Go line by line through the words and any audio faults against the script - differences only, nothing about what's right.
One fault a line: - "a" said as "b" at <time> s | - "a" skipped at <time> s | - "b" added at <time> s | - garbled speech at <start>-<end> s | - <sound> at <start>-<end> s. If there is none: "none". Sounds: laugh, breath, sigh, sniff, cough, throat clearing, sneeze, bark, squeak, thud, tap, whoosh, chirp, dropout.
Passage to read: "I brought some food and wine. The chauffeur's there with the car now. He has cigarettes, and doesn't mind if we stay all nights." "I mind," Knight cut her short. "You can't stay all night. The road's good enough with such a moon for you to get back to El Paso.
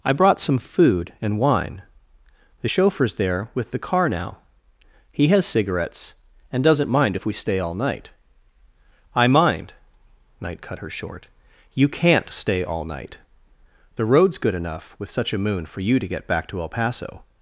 - "nights" said as "night" at 7.7 s